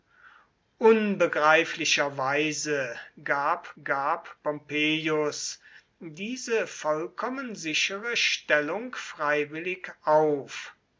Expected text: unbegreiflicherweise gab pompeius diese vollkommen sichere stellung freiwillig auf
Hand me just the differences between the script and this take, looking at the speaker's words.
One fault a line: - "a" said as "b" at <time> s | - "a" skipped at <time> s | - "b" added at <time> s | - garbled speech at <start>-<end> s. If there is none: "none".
- "gab" added at 3.8 s